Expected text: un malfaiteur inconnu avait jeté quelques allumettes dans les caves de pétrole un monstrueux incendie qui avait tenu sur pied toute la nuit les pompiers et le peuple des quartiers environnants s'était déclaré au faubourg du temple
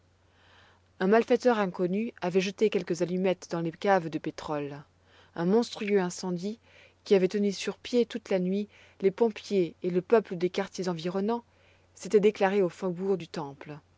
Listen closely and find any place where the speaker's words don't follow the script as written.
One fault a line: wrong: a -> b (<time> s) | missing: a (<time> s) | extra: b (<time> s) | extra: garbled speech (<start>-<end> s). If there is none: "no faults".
no faults